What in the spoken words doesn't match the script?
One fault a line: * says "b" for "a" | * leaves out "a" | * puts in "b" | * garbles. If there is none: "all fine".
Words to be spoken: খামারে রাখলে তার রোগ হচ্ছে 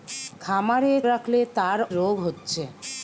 all fine